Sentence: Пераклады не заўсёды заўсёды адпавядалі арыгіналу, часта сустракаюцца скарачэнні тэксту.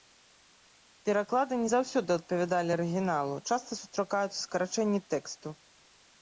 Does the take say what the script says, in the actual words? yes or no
no